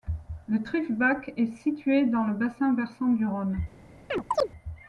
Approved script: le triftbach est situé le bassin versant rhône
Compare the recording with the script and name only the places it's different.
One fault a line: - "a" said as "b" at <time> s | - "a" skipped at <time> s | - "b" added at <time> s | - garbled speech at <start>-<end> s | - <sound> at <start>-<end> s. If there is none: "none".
- "dans" added at 2.0 s
- "du" added at 3.1 s
- chirp at 4.1-4.5 s